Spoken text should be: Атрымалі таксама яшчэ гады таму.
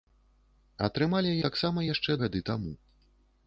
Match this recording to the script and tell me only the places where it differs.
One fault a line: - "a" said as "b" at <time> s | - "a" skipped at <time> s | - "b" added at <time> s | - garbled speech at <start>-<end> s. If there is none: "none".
none